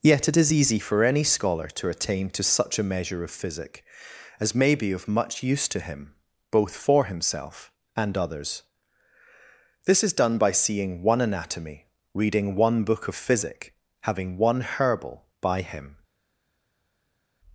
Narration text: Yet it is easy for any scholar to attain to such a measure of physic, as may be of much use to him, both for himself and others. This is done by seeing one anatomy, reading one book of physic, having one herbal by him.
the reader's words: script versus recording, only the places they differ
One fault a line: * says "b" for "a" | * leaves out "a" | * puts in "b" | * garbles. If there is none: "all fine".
all fine